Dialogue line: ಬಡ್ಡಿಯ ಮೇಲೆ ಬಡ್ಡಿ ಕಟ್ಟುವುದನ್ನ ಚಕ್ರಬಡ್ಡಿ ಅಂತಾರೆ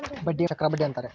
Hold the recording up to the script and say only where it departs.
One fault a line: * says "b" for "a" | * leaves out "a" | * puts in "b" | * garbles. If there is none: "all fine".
* leaves out "ಮೇಲೆ ಬಡ್ಡಿ ಕಟ್ಟುವುದನ್ನ"